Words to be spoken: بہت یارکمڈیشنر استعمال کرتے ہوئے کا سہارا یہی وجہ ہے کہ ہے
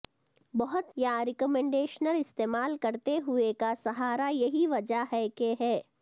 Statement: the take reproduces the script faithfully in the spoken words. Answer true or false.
true